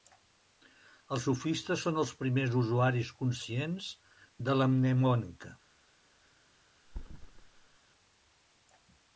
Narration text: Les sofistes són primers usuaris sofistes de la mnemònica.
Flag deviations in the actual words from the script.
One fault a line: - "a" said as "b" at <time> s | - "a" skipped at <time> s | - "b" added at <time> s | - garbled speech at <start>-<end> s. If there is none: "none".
- "Les" said as "Els" at 1.1 s
- "els" added at 2.0 s
- "sofistes" said as "conscients" at 3.2 s